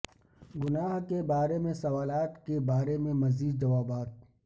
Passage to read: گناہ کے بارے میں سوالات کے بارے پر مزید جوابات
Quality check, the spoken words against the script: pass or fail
fail